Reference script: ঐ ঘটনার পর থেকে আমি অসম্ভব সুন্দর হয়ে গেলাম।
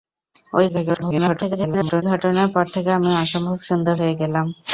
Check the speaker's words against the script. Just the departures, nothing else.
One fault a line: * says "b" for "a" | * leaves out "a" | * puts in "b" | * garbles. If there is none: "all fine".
* garbles